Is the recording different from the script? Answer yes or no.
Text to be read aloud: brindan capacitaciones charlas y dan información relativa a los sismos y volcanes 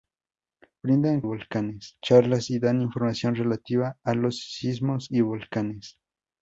yes